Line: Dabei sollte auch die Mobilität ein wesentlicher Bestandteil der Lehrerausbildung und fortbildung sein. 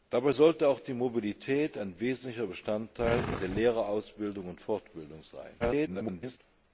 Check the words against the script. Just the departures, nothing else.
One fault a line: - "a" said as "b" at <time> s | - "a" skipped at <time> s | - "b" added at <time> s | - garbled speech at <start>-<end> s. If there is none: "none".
- garbled speech at 5.6-6.4 s